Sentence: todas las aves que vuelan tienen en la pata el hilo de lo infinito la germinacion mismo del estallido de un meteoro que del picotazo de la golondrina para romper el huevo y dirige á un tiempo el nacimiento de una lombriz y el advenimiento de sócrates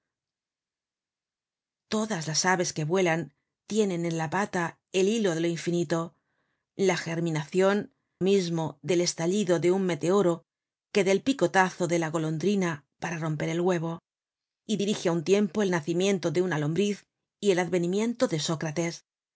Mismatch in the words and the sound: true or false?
false